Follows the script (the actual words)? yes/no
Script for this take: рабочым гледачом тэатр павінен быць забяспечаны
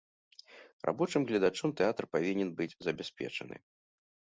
yes